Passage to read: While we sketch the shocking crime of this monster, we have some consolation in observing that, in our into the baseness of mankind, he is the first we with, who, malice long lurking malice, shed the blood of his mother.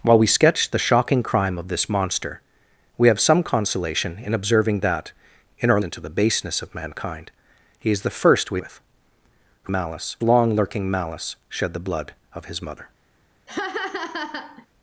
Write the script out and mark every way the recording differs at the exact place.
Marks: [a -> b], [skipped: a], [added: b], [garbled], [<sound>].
While we sketch the shocking crime of this monster, we have some consolation in observing that, in our into the baseness of mankind, he is the first we with, who, malice long lurking malice, shed the blood of his mother. [laugh]